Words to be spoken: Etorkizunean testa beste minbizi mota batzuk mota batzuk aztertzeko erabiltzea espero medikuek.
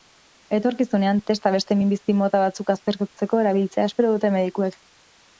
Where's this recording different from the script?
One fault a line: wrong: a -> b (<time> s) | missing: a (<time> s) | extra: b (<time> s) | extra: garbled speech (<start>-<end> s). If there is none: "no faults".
missing: mota batzuk (2.7 s)
extra: dute (4.2 s)